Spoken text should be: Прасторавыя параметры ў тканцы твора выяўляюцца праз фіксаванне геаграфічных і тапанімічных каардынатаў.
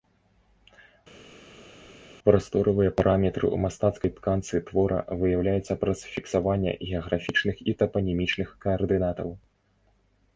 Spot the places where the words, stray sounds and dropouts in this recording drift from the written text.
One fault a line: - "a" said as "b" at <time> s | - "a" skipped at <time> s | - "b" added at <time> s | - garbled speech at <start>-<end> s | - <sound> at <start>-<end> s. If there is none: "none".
- "мастацкай" added at 3.7 s